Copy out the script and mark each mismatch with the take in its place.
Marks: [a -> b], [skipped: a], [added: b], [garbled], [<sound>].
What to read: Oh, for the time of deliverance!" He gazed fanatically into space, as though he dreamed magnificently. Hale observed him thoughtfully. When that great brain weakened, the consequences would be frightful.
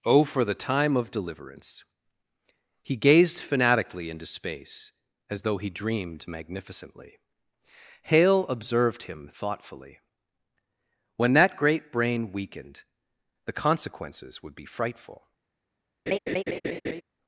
Oh, for the time of deliverance!" He gazed fanatically into space, as though he dreamed magnificently. Hale observed him thoughtfully. When that great brain weakened, the consequences would be frightful. [laugh]